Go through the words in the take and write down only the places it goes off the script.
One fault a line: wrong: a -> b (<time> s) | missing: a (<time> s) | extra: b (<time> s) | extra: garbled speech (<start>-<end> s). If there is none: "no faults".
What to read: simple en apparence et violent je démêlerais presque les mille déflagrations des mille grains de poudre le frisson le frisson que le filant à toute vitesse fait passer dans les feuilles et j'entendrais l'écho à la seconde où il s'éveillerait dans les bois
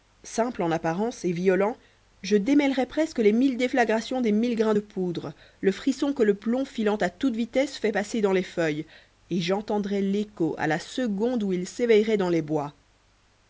missing: le frisson (6.1 s)
extra: plomb (6.3 s)